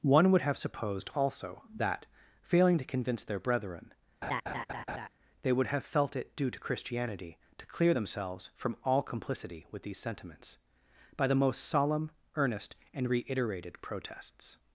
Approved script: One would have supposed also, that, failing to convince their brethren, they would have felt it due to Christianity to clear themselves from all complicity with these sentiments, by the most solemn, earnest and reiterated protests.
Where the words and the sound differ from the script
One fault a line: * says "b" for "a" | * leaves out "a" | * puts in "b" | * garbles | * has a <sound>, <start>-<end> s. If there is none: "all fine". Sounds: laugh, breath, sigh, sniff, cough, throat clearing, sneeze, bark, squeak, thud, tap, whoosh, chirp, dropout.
* has a laugh, 4.2-5.1 s